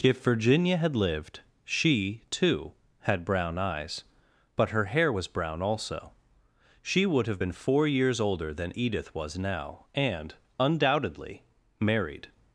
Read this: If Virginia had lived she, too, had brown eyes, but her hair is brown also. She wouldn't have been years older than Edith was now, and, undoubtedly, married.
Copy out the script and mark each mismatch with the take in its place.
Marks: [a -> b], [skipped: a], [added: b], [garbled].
If Virginia had lived she, too, had brown eyes, but her hair [is -> was] brown also. She [wouldn't -> would] have been [added: four] years older than Edith was now, and, undoubtedly, married.